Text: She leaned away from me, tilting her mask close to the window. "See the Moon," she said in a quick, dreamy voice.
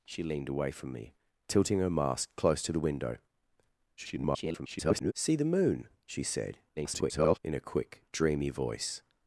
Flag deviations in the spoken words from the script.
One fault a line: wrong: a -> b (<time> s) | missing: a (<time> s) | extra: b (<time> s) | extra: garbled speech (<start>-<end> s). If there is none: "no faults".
extra: garbled speech (4.0-5.1 s)
extra: garbled speech (6.8-7.4 s)